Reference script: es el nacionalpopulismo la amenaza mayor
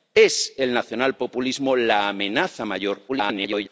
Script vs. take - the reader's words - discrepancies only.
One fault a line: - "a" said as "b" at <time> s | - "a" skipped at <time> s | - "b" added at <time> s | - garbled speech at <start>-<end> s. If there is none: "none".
- garbled speech at 3.1-3.7 s